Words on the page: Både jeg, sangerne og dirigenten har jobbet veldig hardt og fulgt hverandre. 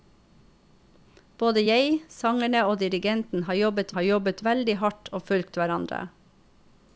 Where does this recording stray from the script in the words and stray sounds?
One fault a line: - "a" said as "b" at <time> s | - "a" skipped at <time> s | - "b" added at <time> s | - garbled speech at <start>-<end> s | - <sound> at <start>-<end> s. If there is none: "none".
- "har jobbet" added at 4.0 s